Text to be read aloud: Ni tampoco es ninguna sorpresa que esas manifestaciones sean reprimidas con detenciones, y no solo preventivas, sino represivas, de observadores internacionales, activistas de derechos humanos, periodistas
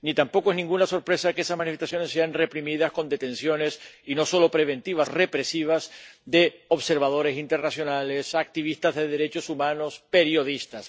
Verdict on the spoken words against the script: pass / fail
fail